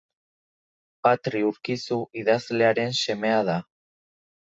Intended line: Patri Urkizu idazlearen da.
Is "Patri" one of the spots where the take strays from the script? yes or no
no